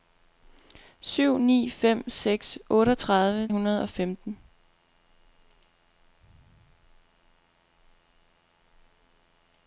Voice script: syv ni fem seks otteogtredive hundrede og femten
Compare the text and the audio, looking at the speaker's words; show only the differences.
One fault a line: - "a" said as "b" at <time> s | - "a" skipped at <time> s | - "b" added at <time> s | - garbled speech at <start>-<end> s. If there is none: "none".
none